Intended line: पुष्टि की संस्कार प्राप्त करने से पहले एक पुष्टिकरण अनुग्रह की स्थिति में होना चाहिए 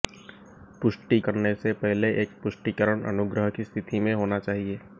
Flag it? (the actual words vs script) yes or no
yes